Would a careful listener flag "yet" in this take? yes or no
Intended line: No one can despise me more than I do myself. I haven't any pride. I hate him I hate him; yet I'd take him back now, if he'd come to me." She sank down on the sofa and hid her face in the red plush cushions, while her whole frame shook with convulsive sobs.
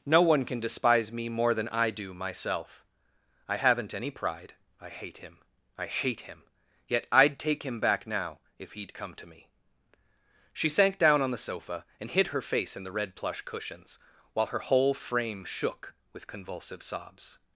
no